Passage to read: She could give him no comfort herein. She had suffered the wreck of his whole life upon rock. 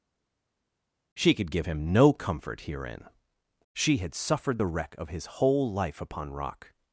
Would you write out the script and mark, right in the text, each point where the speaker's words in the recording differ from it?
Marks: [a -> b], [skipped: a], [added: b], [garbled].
She could give him no comfort herein. She had suffered the wreck of his whole life upon rock.